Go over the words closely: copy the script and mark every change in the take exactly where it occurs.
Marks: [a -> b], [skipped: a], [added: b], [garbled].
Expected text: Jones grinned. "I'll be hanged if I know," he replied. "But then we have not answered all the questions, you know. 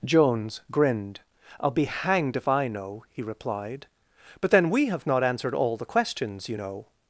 Jones grinned. "I'll be hanged if I know," he replied. "But then we have not answered all the questions, you know.